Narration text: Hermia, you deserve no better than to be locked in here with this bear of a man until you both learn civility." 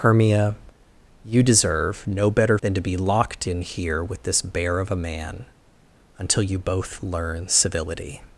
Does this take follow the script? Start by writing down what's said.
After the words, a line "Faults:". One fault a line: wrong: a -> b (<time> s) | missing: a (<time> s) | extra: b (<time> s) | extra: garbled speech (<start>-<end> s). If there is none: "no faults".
Hermia, you deserve no better than to be locked in here with this bear of a man until you both learn civility."
Faults:
no faults